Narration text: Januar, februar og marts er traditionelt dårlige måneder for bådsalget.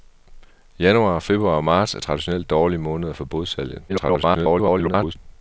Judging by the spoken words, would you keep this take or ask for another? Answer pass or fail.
fail